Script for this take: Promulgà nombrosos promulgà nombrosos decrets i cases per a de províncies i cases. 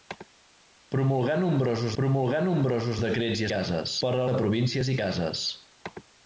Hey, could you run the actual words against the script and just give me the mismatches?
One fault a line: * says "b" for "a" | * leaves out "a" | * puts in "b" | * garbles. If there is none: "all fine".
all fine